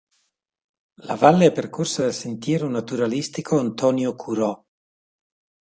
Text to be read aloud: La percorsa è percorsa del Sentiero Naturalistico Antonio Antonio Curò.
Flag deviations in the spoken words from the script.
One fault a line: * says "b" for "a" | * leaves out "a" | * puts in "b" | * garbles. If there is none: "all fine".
* says "valle" for "percorsa"
* says "dal" for "del"
* leaves out "Antonio"